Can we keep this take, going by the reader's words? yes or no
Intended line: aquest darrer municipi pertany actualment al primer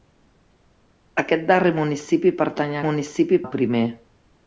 no